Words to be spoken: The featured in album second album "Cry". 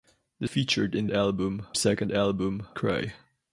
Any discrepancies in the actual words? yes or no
no